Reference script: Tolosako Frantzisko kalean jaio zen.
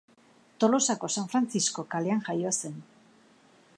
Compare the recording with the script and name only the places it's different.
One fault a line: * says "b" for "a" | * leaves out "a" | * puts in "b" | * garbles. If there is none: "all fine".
* puts in "San"